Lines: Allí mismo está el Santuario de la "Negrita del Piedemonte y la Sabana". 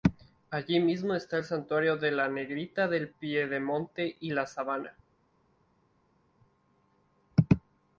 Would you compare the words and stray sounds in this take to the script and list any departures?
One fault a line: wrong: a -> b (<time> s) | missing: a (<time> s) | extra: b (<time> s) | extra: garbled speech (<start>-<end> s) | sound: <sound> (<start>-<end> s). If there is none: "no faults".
no faults